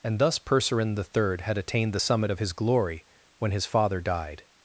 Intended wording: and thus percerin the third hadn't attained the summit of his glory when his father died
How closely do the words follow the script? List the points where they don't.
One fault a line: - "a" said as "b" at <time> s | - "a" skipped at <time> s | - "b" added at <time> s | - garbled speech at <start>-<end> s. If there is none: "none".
- "hadn't" said as "had" at 1.4 s